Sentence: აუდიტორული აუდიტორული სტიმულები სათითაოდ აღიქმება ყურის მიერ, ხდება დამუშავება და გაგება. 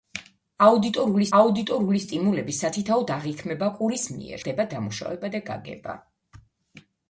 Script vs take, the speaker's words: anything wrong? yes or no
no